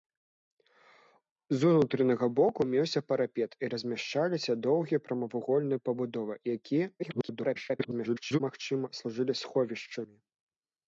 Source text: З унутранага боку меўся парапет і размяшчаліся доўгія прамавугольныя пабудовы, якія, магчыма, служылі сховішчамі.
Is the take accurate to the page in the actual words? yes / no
no